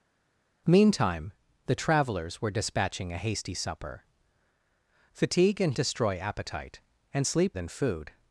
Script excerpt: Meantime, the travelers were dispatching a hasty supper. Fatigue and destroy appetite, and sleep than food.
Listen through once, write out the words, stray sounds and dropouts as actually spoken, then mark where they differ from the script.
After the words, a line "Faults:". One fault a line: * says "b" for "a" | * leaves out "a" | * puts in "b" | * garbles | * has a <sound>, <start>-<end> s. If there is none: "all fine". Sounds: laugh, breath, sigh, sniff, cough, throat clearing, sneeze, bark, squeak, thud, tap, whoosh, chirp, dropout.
Meantime, the travelers were dispatching a hasty supper. Fatigue and destroy appetite, and sleep than food.
Faults:
all fine